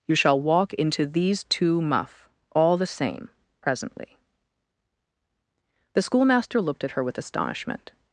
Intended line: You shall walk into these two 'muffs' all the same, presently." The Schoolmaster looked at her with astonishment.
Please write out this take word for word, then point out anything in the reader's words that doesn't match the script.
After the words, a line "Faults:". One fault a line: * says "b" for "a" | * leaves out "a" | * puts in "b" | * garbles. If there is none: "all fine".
You shall walk into these two 'muff' all the same, presently." The Schoolmaster looked at her with astonishment.
Faults:
* says "muff" for "muffs"